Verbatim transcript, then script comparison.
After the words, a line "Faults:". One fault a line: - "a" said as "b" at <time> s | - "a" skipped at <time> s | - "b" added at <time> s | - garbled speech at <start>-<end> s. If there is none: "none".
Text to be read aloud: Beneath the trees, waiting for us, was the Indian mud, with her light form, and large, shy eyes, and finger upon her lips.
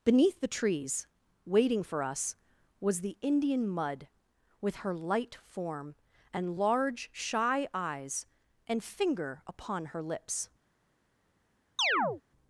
Beneath the trees, waiting for us, was the Indian mud, with her light form, and large, shy eyes, and finger upon her lips.
Faults:
none